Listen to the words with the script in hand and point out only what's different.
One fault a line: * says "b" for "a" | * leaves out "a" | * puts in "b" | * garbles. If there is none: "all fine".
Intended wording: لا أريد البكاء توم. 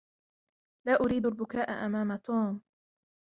* puts in "أمام"